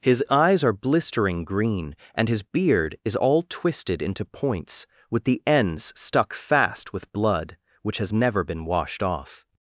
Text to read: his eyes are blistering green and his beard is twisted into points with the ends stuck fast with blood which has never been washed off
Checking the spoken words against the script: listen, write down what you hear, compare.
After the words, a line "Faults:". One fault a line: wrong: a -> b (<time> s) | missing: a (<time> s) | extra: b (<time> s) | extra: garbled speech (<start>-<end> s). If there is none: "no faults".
his eyes are blistering green and his beard is all twisted into points with the ends stuck fast with blood which has never been washed off
Faults:
extra: all (3.1 s)